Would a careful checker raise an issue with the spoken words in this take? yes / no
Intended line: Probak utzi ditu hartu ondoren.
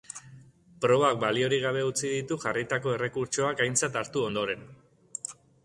yes